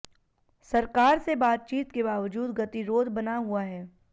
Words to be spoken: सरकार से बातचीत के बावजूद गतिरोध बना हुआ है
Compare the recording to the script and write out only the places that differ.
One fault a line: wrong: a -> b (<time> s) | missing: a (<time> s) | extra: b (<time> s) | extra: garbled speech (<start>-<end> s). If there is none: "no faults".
no faults